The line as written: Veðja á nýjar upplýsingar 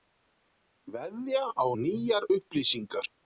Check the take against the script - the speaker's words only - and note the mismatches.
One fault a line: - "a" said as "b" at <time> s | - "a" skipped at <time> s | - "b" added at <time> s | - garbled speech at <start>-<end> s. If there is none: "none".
none